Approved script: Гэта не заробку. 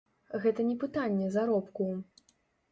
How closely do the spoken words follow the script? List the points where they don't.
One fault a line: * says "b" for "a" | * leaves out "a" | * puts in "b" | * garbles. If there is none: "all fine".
* puts in "пытанне"